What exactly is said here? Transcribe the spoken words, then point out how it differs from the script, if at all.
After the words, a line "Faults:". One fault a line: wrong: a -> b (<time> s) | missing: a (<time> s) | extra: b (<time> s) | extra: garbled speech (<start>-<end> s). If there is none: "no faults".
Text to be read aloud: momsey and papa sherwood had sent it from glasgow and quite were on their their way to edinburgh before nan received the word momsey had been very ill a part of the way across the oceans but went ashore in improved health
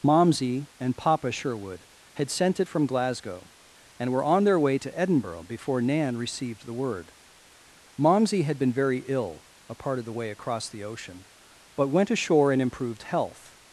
momsey and papa sherwood had sent it from glasgow and were on their way to edinburgh before nan received the word momsey had been very ill a part of the way across the ocean but went ashore in improved health
Faults:
missing: quite (4.1 s)
missing: their (4.6 s)
wrong: oceans -> ocean (10.8 s)